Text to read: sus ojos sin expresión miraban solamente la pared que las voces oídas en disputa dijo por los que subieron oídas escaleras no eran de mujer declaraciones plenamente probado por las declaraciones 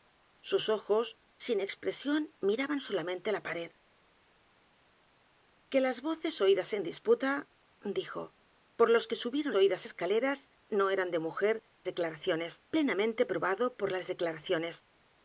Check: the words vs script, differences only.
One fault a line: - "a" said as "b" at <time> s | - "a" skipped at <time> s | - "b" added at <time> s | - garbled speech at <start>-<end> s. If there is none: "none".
none